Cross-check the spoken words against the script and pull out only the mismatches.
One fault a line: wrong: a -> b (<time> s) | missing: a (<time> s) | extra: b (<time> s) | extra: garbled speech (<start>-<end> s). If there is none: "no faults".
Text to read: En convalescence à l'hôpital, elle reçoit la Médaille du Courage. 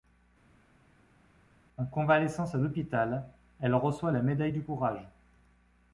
no faults